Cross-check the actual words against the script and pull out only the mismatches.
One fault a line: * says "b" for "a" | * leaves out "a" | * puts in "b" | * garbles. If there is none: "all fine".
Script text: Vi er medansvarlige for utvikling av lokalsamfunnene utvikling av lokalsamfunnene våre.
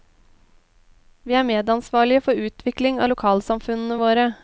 * leaves out "utvikling av lokalsamfunnene"